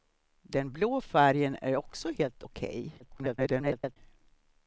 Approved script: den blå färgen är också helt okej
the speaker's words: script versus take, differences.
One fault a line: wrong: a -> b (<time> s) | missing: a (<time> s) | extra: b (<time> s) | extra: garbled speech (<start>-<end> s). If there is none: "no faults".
extra: garbled speech (3.0-4.0 s)